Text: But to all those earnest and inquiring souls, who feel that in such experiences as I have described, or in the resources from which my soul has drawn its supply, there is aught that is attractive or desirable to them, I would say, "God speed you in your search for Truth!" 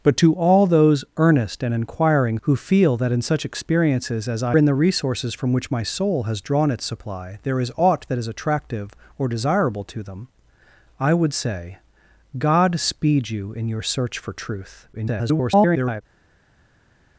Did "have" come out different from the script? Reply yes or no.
yes